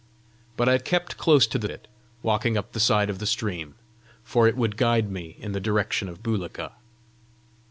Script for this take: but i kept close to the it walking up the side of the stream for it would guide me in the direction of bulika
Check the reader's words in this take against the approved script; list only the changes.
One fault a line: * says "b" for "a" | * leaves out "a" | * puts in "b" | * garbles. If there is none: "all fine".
all fine